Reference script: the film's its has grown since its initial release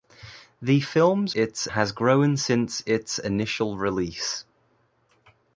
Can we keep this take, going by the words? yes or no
yes